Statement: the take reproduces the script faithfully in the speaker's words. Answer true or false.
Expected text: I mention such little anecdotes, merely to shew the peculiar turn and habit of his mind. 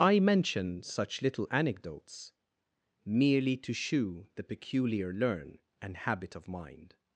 false